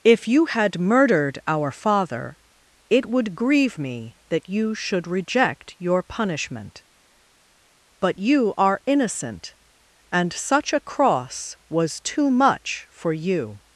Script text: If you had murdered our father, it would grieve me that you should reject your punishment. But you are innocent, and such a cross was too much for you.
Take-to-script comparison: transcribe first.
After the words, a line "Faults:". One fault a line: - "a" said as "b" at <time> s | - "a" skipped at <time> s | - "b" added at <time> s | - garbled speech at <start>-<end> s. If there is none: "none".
If you had murdered our father, it would grieve me that you should reject your punishment. But you are innocent, and such a cross was too much for you.
Faults:
none